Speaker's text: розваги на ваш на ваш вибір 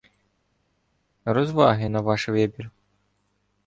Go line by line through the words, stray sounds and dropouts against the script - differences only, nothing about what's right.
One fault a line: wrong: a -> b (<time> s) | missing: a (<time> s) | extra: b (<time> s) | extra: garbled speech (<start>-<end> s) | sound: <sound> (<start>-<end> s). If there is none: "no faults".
missing: на ваш (2.3 s)